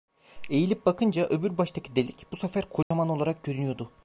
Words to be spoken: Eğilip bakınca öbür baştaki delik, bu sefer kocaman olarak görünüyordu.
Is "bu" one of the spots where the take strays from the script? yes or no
no